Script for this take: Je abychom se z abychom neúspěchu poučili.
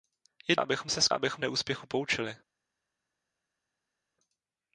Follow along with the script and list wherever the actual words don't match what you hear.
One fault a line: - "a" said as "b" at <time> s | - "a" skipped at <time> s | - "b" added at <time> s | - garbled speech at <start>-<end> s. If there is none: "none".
none